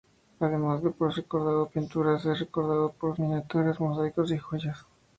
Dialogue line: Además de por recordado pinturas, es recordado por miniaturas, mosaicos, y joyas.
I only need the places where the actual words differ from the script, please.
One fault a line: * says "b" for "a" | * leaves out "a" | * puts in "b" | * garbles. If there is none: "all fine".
all fine